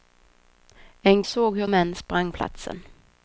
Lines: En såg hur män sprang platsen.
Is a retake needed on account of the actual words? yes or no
no